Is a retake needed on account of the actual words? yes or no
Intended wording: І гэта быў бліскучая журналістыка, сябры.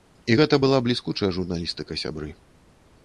yes